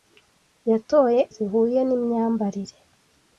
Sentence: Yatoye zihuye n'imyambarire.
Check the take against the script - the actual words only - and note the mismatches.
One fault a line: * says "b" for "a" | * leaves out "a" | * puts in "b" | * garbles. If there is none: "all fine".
all fine